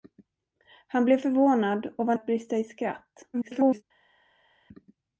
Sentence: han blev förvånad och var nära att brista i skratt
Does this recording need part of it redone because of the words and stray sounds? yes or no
yes